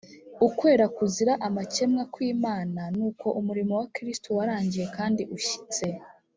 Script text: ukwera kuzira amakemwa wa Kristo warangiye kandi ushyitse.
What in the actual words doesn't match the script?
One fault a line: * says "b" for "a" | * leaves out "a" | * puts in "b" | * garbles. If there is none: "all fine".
* puts in "kw'Imana n'uko umurimo"